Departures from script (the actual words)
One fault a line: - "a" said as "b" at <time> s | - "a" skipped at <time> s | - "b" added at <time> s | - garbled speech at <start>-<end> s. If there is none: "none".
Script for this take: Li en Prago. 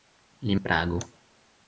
none